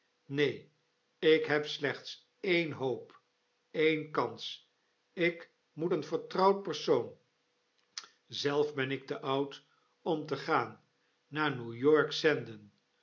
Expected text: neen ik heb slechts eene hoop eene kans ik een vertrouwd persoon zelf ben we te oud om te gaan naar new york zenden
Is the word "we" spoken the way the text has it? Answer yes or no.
no